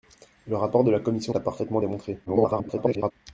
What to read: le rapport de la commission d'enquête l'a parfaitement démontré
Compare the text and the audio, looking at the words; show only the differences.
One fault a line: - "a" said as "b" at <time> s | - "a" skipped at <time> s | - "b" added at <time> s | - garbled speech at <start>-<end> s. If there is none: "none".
- "d'enquête" skipped at 1.4 s
- garbled speech at 2.3-3.1 s